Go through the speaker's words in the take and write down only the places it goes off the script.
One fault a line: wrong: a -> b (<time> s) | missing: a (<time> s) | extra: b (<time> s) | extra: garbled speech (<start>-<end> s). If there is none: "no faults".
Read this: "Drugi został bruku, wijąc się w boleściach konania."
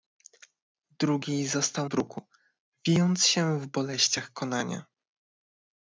no faults